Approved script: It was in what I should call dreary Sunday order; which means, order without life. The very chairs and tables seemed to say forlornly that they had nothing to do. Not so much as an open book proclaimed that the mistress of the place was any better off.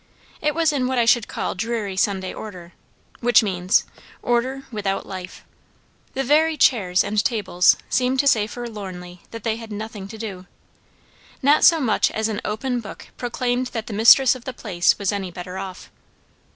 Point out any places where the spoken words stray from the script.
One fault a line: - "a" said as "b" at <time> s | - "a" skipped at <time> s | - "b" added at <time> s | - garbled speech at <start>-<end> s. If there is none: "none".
none